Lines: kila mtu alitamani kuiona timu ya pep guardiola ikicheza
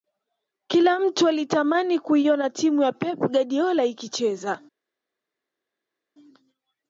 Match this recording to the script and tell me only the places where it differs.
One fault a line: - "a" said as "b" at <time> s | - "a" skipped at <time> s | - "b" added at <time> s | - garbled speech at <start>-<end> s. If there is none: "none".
none